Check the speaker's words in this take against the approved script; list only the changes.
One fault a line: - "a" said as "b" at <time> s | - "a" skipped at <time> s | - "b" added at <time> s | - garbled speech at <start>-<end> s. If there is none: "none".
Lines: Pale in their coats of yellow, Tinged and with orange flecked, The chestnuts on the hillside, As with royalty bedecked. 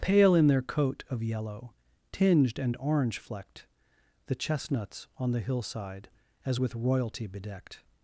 - "coats" said as "coat" at 0.6 s
- "with" skipped at 2.8 s